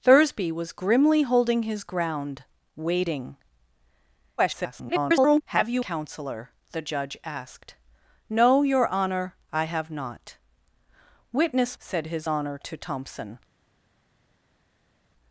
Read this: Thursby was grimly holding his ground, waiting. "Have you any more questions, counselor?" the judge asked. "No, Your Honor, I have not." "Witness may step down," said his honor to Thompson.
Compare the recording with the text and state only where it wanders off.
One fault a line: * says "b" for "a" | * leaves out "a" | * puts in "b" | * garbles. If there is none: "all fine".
* garbles
* leaves out "any more questions"
* leaves out "may step down"